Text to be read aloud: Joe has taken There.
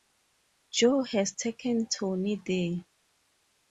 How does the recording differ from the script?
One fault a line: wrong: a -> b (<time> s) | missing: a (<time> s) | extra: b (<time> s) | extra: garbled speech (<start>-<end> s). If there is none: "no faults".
extra: Tony (1.9 s)